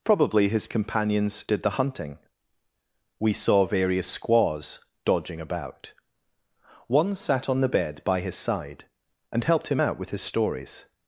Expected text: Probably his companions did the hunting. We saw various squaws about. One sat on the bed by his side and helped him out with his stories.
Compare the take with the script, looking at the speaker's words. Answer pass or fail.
fail